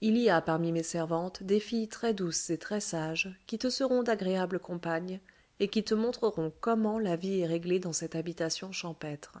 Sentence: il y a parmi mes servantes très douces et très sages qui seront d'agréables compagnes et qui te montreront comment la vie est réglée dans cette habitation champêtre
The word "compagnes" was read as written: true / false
true